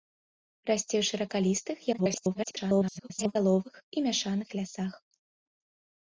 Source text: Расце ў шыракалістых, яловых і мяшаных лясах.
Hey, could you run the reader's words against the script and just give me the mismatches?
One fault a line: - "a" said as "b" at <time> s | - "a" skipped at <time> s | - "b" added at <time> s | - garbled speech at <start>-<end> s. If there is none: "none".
- garbled speech at 1.9-3.4 s